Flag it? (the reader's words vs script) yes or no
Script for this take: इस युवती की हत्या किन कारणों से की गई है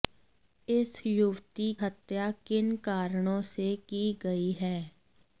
yes